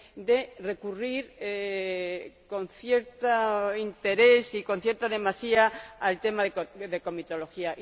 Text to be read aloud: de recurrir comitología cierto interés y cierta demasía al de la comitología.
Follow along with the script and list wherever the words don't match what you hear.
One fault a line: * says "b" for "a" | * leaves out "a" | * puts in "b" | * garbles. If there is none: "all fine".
* says "con" for "comitología"
* puts in "con"
* puts in "tema"